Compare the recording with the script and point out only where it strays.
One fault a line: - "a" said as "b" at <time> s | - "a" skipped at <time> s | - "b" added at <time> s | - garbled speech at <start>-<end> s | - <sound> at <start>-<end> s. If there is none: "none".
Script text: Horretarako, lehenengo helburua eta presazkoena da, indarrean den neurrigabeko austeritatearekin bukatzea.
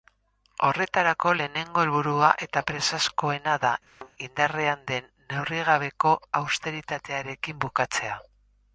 - thud at 3.9-4.1 s